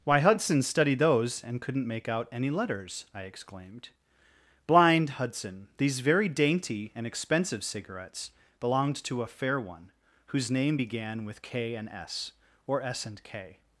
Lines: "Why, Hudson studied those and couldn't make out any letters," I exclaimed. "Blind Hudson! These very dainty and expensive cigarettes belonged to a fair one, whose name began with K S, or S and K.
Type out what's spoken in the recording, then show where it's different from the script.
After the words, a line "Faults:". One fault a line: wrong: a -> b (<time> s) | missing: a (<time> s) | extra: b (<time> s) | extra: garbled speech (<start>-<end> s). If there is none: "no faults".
"Why, Hudson studied those and couldn't make out any letters," I exclaimed. "Blind Hudson! These very dainty and expensive cigarettes belonged to a fair one, whose name began with K and S, or S and K.
Faults:
extra: and (11.8 s)